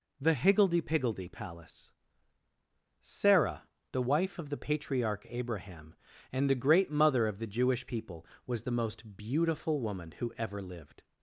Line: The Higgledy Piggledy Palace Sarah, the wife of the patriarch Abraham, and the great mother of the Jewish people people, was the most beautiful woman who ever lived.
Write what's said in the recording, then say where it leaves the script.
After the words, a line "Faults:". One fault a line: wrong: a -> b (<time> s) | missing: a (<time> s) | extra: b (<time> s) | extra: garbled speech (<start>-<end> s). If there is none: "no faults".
The Higgledy Piggledy Palace Sarah, the wife of the patriarch Abraham, and the great mother of the Jewish people, was the most beautiful woman who ever lived.
Faults:
missing: people (8.3 s)